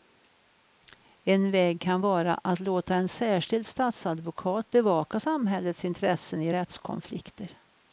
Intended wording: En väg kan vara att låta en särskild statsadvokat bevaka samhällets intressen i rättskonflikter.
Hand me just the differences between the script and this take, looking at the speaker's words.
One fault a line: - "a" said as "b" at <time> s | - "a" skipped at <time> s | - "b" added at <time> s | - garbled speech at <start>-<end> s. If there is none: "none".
none